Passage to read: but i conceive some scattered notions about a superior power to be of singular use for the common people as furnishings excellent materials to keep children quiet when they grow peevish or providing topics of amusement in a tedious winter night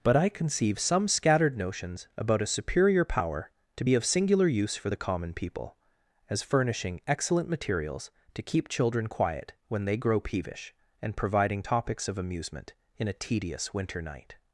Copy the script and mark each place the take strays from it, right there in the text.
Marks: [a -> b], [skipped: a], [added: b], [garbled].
but i conceive some scattered notions about a superior power to be of singular use for the common people as [furnishings -> furnishing] excellent materials to keep children quiet when they grow peevish [or -> and] providing topics of amusement in a tedious winter night